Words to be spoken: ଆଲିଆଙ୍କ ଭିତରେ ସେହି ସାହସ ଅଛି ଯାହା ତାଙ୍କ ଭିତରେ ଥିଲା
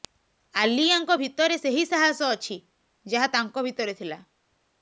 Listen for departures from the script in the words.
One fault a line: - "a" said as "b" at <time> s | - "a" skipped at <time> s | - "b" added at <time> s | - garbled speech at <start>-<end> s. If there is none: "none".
none